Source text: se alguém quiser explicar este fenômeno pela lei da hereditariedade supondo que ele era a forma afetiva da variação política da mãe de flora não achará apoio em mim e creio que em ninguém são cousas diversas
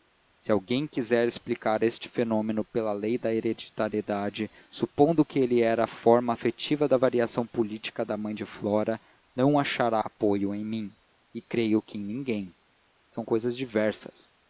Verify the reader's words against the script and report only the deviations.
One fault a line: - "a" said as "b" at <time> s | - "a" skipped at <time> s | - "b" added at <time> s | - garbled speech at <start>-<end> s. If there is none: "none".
none